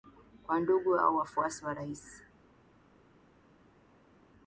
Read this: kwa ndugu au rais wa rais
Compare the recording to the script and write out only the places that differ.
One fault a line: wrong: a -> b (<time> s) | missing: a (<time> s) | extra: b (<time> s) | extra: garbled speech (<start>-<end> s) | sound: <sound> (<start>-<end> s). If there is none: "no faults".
wrong: rais -> wafuasi (1.1 s)